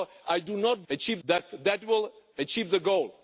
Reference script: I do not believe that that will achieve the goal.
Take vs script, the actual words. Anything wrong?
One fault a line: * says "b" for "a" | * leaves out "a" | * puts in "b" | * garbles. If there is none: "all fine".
* says "achieve" for "believe"